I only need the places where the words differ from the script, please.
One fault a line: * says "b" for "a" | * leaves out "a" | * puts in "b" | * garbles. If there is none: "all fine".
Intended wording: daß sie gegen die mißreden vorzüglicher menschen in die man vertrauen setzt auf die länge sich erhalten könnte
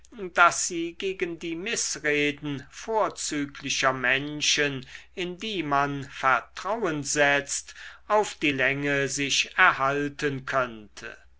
all fine